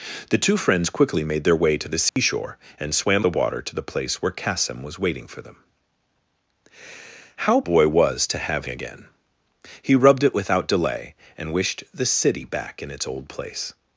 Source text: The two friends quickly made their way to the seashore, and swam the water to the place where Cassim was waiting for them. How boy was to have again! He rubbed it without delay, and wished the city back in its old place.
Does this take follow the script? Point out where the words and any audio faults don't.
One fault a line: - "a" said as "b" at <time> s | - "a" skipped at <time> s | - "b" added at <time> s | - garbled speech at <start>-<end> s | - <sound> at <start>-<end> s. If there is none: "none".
- dropout at 2.1-2.2 s